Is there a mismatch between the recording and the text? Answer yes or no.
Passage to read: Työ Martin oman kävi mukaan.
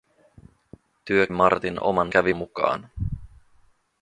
no